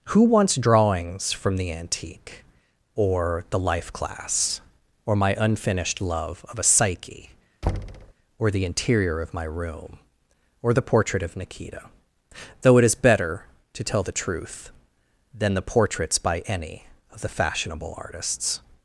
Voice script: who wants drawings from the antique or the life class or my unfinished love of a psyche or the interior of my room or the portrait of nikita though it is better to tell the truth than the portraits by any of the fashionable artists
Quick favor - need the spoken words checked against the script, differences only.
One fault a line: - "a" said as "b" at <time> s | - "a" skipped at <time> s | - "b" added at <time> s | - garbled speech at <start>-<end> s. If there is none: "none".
none